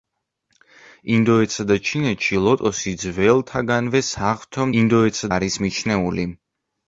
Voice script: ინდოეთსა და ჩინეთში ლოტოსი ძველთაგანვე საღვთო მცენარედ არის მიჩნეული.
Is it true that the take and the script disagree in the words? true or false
true